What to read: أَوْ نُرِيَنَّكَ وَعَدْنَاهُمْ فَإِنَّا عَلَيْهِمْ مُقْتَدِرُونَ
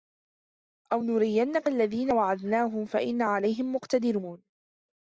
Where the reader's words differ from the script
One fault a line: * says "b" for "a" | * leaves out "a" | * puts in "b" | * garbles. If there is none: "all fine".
* puts in "الَّذِي"